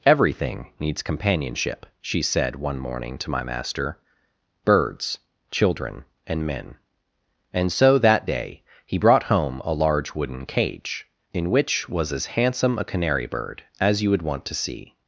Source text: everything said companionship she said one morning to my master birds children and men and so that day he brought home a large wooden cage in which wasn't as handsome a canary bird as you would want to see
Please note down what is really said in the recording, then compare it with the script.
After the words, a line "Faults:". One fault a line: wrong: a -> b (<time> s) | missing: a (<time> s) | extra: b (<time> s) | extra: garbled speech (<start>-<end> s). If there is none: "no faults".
everything needs companionship she said one morning to my master birds children and men and so that day he brought home a large wooden cage in which was as handsome a canary bird as you would want to see
Faults:
wrong: said -> needs (0.8 s)
wrong: wasn't -> was (11.9 s)